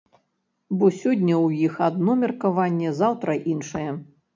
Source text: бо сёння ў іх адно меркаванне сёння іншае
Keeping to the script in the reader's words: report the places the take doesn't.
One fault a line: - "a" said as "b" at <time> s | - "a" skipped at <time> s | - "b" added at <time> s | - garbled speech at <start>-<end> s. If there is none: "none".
- "сёння" said as "заўтра" at 3.0 s